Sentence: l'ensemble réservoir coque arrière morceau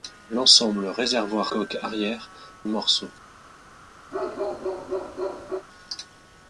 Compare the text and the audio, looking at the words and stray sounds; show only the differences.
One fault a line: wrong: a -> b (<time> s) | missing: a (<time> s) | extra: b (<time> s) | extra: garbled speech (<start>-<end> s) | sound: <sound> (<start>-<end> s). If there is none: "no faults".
sound: bark (4.1-5.7 s)